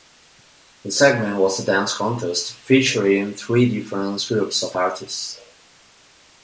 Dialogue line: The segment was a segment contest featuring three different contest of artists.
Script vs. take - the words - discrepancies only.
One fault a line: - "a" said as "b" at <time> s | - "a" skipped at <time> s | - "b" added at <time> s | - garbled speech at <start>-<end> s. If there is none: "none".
- "segment" said as "dance" at 1.6 s
- "contest" said as "groups" at 4.3 s